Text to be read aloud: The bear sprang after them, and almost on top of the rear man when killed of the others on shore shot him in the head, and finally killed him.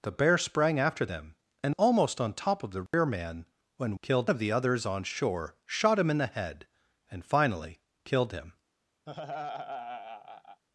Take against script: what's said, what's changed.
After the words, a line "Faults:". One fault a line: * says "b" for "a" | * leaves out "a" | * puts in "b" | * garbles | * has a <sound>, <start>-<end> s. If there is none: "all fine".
The bear sprang after them, and almost on top of the rear man when killed of the others on shore shot him in the head, and finally killed him.
Faults:
* has a dropout, 2.9-2.9 s
* has a laugh, 9.1-10.6 s